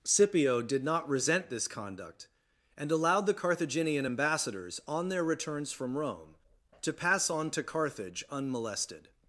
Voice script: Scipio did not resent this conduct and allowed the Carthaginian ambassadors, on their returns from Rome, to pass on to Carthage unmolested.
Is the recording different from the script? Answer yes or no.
no